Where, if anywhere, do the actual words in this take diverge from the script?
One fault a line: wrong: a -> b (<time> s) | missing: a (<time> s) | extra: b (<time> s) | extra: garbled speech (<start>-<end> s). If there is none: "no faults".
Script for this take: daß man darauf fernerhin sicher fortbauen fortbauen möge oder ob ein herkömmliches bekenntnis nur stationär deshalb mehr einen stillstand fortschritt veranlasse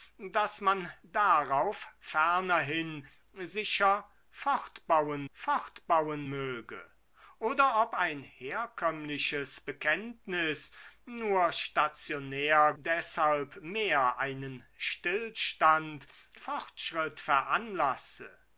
no faults